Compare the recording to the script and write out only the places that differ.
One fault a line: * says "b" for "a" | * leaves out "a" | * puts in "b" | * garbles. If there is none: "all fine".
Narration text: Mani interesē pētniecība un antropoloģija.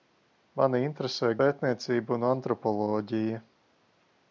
all fine